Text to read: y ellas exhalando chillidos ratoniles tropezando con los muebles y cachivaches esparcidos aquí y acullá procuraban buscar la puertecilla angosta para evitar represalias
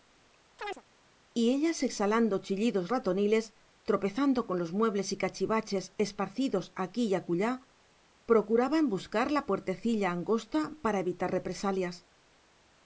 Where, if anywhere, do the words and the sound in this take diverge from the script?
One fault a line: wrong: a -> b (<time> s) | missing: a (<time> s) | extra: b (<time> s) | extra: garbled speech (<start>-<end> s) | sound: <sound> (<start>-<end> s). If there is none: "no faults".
sound: chirp (0.6-0.8 s)